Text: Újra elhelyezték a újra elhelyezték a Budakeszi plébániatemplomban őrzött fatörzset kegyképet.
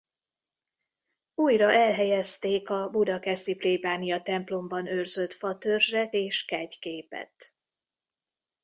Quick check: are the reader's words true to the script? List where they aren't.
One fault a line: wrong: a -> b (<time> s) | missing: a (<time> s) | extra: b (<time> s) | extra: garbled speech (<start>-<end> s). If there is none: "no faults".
missing: újra elhelyezték a (2.9 s)
extra: és (6.1 s)